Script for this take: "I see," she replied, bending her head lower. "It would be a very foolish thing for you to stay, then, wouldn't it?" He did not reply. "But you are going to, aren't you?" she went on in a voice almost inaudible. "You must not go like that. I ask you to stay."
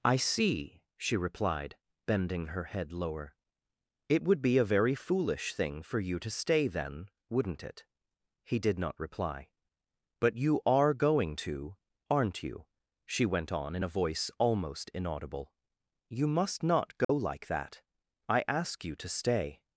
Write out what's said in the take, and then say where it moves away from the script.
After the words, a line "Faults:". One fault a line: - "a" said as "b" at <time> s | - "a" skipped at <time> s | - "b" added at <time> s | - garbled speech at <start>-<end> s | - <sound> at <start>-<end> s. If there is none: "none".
"I see," she replied, bending her head lower. "It would be a very foolish thing for you to stay, then, wouldn't it?" He did not reply. "But you are going to, aren't you?" she went on in a voice almost inaudible. "You must not go like that. I ask you to stay."
Faults:
- dropout at 17.0-17.1 s